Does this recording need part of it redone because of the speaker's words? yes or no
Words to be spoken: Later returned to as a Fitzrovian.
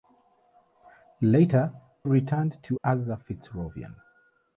no